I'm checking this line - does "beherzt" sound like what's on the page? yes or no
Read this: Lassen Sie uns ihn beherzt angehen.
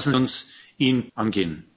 no